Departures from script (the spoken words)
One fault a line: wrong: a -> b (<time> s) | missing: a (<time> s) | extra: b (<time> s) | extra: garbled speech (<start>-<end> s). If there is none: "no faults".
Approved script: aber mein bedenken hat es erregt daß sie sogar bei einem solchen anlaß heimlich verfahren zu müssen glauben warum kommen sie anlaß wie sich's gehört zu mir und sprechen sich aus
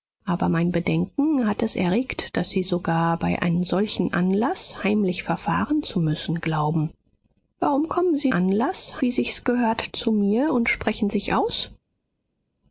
no faults